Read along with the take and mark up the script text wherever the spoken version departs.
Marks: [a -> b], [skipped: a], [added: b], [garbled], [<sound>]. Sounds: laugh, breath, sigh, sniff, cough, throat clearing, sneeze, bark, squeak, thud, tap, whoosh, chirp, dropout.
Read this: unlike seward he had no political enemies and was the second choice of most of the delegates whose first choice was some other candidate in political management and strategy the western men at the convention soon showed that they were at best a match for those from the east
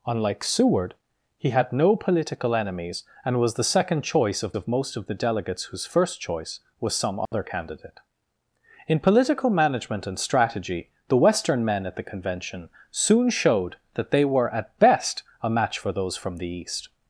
unlike seward he had no political enemies and was the second choice of [added: of] most of the delegates whose first choice was some other [dropout] candidate in political management and strategy the western men at the convention soon showed that they were at best a match for those from the east